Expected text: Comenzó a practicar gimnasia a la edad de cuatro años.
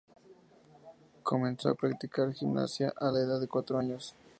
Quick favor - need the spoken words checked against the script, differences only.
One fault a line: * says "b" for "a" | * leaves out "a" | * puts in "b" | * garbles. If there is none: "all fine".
all fine